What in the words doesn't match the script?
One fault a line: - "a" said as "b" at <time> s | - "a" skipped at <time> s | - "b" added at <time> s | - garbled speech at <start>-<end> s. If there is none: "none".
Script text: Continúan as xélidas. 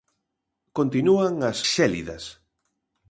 none